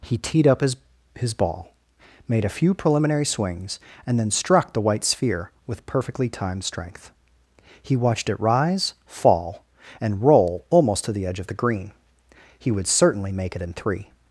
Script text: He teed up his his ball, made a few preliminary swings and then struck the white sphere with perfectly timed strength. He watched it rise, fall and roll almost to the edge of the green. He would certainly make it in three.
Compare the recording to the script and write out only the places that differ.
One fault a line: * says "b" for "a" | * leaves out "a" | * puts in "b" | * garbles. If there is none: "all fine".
all fine